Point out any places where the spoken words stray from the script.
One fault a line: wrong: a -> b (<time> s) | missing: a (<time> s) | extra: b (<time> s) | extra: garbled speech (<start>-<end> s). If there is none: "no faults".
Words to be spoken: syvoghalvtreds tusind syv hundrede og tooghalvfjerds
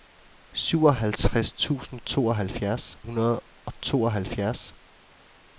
wrong: syv -> tooghalvfjerds (2.0 s)